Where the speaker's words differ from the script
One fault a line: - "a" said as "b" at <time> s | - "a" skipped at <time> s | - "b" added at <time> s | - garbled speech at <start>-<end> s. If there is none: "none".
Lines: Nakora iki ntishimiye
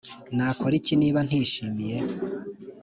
- "niba" added at 1.0 s